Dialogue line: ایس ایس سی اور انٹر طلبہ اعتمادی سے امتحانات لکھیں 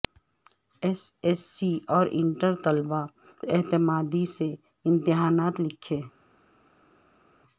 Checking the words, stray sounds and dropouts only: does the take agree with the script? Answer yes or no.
yes